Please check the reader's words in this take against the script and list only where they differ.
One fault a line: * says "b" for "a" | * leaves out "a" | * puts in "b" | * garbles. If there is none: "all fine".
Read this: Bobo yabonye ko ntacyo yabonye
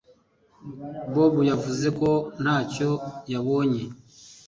* says "yavuze" for "yabonye"